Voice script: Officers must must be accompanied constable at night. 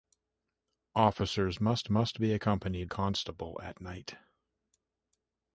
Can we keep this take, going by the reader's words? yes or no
yes